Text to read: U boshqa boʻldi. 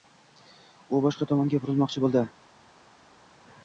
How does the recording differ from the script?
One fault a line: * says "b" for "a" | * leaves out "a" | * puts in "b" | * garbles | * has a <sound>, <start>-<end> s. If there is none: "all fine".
* puts in "tomonga burilmoqchi"